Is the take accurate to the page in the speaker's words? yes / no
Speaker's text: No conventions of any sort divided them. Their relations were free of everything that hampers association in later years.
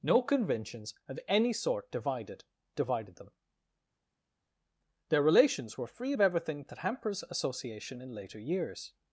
no